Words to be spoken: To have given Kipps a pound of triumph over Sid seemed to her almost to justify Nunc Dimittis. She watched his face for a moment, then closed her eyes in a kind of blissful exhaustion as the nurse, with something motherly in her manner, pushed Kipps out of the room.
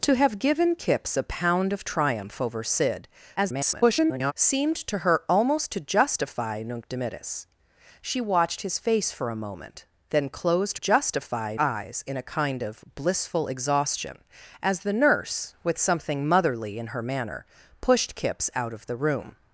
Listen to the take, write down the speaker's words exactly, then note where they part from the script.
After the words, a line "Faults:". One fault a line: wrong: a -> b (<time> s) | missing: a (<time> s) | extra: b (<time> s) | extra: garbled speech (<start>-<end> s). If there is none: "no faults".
To have given Kipps a pound of triumph over Sid [garbled] seemed to her almost to justify Nunc Dimittis. She watched his face for a moment, then closed justify eyes in a kind of blissful exhaustion as the nurse, with something motherly in her manner, pushed Kipps out of the room.
Faults:
extra: garbled speech (3.4-4.3 s)
wrong: her -> justify (10.7 s)